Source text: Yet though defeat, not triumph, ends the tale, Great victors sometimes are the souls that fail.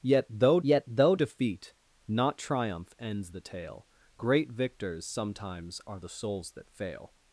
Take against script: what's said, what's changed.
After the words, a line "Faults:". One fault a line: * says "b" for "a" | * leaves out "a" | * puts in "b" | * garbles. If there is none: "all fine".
Yet though yet though defeat, not triumph, ends the tale, Great victors sometimes are the souls that fail.
Faults:
* puts in "yet though"